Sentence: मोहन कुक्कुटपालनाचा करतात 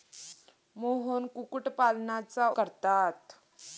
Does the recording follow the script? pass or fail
pass